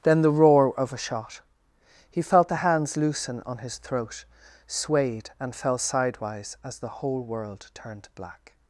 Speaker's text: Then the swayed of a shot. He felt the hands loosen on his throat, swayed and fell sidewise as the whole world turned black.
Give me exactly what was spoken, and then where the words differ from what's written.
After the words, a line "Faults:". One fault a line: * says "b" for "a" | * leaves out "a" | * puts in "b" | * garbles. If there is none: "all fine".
Then the roar of a shot. He felt the hands loosen on his throat, swayed and fell sidewise as the whole world turned black.
Faults:
* says "roar" for "swayed"